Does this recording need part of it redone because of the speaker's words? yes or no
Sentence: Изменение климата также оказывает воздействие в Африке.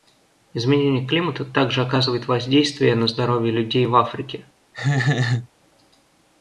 yes